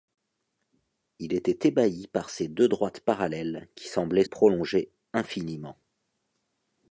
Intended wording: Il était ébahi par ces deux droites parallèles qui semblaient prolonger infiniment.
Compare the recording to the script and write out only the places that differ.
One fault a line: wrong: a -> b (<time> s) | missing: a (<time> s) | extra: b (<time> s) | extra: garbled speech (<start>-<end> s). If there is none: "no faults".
no faults